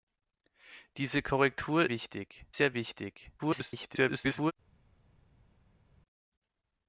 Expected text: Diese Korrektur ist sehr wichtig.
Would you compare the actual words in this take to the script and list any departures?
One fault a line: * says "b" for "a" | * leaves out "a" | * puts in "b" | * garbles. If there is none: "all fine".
* says "wichtig" for "ist"
* garbles